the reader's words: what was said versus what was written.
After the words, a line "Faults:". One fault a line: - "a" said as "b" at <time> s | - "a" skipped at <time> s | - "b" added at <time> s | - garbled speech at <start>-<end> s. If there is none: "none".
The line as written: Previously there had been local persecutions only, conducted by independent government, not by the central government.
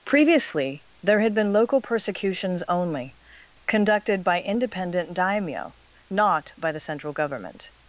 Previously there had been local persecutions only, conducted by independent daimyo, not by the central government.
Faults:
- "government" said as "daimyo" at 5.1 s